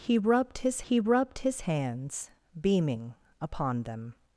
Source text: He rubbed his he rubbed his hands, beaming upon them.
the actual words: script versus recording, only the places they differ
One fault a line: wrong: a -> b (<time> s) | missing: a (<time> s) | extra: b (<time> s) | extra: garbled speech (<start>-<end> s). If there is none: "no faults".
no faults